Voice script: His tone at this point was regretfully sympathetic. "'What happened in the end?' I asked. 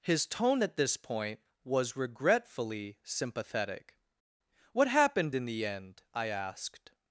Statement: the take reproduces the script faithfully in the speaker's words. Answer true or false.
true